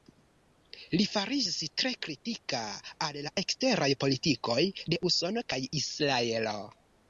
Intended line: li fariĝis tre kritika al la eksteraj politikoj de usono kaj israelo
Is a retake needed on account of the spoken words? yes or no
no